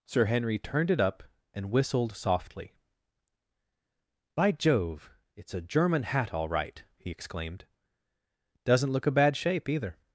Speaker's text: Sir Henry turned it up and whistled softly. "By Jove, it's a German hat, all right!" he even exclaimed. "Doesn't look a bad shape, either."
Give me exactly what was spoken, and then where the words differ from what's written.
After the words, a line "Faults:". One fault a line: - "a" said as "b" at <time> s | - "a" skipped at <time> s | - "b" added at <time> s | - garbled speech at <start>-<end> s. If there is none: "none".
Sir Henry turned it up and whistled softly. "By Jove, it's a German hat, all right!" he exclaimed. "Doesn't look a bad shape, either."
Faults:
- "even" skipped at 7.1 s